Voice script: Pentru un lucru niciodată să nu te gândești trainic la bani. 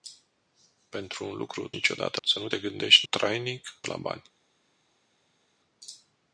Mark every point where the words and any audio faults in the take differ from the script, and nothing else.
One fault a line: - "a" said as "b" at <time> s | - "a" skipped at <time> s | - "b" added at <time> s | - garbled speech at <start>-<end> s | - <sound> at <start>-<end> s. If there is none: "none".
none